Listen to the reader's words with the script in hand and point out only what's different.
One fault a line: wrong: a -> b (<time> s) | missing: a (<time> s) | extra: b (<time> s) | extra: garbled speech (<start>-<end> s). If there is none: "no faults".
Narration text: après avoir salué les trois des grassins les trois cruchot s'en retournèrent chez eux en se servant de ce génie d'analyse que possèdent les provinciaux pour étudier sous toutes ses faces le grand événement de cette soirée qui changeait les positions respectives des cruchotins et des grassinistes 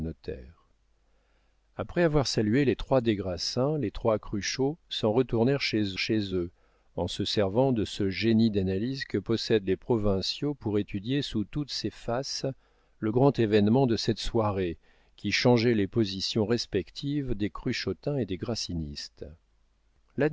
extra: chez (6.0 s)